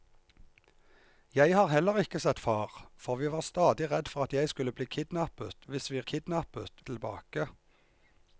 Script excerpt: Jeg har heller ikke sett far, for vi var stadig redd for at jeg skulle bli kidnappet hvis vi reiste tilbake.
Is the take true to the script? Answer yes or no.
no